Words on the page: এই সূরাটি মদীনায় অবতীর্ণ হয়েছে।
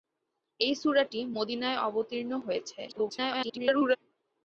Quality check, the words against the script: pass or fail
fail